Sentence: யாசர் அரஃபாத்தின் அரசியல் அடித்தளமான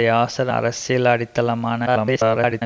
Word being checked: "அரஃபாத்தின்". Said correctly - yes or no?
no